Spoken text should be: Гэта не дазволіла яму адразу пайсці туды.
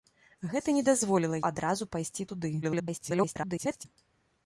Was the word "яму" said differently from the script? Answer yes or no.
yes